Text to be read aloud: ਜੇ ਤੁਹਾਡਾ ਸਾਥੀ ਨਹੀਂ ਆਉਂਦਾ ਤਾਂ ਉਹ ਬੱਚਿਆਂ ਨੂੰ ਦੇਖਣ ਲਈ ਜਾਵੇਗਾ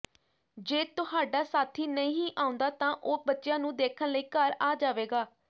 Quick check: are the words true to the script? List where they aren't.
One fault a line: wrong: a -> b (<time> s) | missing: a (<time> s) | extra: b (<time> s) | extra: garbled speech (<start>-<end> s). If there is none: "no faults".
extra: ਘਰ ਆ (4.3 s)